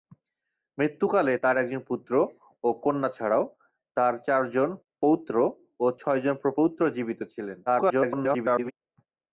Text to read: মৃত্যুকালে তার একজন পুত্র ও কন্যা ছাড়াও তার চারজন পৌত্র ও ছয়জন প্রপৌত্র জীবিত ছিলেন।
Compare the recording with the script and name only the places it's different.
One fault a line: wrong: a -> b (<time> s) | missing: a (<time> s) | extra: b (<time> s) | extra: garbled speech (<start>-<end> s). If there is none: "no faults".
extra: garbled speech (7.7-8.7 s)